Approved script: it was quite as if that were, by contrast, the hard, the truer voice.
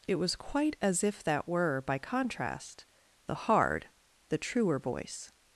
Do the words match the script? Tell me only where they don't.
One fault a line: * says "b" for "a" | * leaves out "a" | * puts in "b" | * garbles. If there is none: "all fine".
all fine